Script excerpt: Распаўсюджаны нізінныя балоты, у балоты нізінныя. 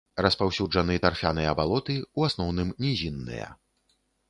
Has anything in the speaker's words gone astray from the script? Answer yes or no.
yes